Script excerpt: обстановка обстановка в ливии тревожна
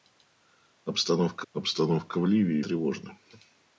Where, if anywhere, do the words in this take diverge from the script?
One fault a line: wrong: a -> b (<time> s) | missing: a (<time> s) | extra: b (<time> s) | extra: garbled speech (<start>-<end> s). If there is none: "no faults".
no faults